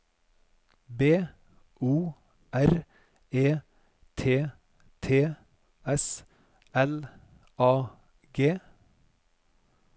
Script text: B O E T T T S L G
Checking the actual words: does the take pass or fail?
fail